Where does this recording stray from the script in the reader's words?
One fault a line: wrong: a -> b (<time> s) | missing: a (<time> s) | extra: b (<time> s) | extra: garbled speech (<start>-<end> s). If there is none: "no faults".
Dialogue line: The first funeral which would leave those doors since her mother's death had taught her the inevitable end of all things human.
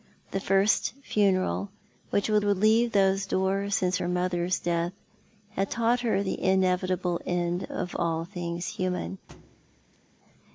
extra: would (2.4 s)